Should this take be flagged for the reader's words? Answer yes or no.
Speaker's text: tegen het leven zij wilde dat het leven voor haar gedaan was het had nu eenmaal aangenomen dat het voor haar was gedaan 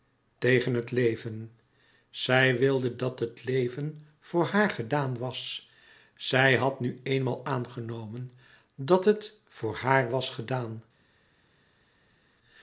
yes